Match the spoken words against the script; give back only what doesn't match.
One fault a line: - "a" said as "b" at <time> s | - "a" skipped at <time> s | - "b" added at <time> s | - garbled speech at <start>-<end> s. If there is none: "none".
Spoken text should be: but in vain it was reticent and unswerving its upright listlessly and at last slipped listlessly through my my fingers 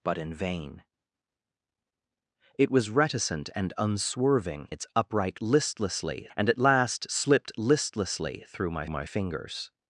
none